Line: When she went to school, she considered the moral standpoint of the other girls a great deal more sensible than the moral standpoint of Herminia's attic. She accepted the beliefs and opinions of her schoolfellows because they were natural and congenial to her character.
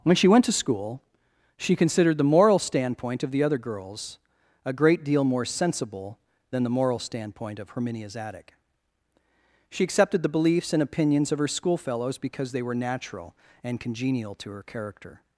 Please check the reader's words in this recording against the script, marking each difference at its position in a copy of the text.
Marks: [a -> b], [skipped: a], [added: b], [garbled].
When she went to school, she considered the moral standpoint of the other girls a great deal more sensible than the moral standpoint of Herminia's attic. She accepted the beliefs and opinions of her schoolfellows because they were natural and congenial to her character.